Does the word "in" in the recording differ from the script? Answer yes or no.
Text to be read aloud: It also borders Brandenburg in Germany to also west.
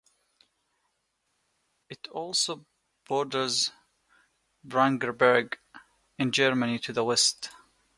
no